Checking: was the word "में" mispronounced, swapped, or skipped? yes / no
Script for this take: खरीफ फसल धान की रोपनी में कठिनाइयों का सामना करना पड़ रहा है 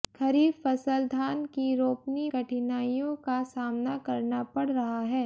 yes